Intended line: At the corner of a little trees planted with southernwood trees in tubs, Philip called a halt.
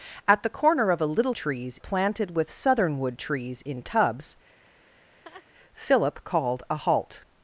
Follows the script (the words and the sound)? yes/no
no